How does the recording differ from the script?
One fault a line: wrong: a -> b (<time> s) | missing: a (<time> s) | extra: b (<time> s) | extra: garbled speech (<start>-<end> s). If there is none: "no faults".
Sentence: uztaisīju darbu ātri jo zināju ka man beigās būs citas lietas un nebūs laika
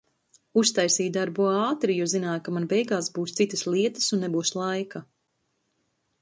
no faults